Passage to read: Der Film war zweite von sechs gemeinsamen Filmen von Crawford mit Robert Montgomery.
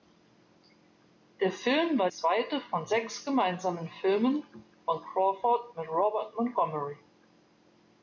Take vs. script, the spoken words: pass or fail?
pass